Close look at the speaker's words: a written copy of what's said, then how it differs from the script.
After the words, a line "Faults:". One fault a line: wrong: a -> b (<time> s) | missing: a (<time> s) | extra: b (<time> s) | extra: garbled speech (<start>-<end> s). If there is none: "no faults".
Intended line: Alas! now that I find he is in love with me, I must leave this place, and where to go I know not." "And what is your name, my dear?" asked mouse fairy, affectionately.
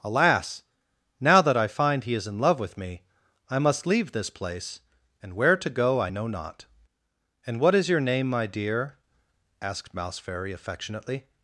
Alas! now that I find he is in love with me, I must leave this place, and where to go I know not." "And what is your name, my dear?" asked mouse fairy, affectionately.
Faults:
no faults